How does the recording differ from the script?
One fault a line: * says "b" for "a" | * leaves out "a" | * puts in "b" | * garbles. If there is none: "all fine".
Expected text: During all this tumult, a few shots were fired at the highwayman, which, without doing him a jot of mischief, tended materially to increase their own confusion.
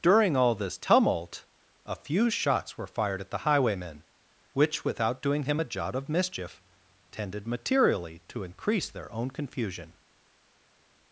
all fine